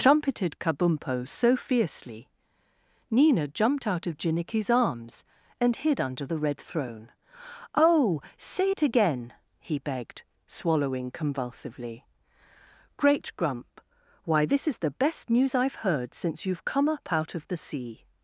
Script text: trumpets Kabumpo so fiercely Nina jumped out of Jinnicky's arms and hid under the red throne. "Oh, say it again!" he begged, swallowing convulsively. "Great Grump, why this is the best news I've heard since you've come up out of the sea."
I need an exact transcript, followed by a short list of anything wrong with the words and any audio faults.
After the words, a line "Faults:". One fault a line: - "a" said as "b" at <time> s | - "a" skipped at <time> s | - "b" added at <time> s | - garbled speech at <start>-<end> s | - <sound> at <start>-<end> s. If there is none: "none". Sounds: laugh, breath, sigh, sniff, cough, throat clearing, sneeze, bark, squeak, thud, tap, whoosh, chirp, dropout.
trumpeted Kabumpo so fiercely Nina jumped out of Jinnicky's arms and hid under the red throne. "Oh, say it again!" he begged, swallowing convulsively. "Great Grump, why this is the best news I've heard since you've come up out of the sea."
Faults:
- "trumpets" said as "trumpeted" at 0.0 s